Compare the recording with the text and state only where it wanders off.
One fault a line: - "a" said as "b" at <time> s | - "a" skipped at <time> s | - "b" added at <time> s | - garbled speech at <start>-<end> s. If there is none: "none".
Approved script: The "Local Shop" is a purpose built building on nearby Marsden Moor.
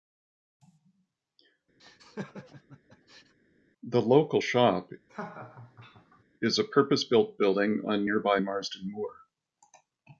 none